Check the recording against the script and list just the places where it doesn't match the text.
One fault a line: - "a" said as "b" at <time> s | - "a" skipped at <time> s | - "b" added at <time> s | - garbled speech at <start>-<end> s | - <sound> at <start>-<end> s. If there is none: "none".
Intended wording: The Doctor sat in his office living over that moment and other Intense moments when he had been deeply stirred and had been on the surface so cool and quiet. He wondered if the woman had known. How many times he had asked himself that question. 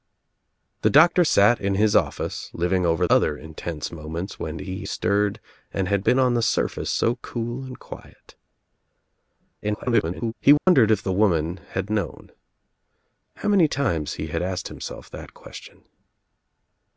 - "that moment and" skipped at 3.0 s
- "had been deeply" skipped at 4.8 s
- garbled speech at 9.6-10.3 s
- dropout at 10.6-10.7 s